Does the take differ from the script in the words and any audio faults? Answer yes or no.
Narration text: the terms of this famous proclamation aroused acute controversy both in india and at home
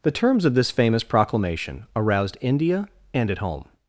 yes